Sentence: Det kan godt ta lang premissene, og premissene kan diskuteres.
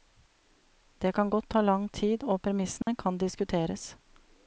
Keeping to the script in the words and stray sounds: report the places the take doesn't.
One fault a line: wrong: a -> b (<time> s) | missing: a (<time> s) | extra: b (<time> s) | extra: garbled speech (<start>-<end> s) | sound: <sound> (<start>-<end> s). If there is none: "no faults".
wrong: premissene -> tid (1.9 s)
sound: dropout (2.8-2.9 s)